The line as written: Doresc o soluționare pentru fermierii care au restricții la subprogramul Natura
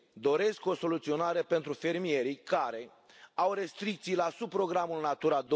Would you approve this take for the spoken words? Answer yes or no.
yes